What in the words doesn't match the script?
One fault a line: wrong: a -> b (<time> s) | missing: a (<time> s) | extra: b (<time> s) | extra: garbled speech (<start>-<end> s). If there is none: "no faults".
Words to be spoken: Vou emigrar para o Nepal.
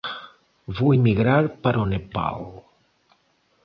no faults